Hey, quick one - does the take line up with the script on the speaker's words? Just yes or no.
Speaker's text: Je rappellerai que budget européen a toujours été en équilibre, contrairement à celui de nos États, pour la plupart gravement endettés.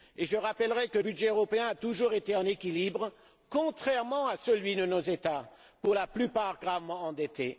yes